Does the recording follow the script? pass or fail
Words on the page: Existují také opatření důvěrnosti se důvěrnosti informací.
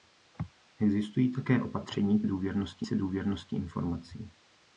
pass